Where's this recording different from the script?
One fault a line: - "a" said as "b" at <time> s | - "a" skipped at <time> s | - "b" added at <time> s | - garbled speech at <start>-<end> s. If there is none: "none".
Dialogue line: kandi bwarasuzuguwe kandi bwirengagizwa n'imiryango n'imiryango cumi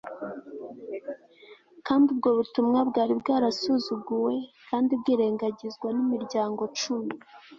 - "ubwo butumwa bwari" added at 2.1 s
- "n'imiryango" skipped at 6.6 s